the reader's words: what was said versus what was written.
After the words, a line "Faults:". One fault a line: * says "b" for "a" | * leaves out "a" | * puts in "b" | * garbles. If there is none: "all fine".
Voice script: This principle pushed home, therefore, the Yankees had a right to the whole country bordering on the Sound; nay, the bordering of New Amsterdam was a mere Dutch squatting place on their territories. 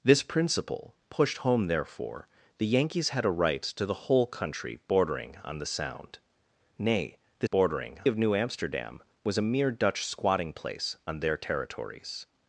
This principle pushed home, therefore, the Yankees had a right to the whole country bordering on the Sound; nay, the bordering of New Amsterdam was a mere Dutch squatting place on their territories.
Faults:
all fine